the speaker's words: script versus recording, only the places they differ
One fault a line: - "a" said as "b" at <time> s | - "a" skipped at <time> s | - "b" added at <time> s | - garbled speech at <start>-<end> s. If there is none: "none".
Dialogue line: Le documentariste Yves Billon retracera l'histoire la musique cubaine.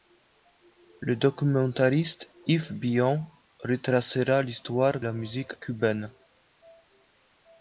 none